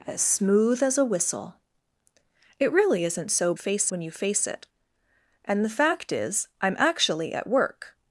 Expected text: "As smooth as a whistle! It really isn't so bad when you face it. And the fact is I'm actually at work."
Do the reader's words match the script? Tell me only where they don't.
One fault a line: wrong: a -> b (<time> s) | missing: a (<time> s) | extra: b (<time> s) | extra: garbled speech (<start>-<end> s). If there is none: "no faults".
wrong: bad -> face (3.5 s)